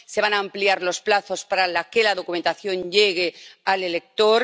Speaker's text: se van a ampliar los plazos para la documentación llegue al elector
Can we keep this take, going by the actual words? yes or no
no